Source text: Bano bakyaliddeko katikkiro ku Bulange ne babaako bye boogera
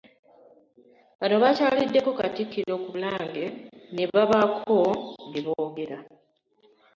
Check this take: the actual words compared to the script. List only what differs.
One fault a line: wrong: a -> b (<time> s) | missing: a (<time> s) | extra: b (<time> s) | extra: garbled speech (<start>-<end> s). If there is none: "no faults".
no faults